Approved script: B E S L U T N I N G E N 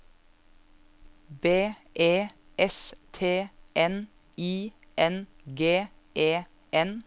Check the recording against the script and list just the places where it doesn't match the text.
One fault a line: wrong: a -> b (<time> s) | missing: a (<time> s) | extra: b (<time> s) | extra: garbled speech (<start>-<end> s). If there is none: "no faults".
missing: L U (2.9 s)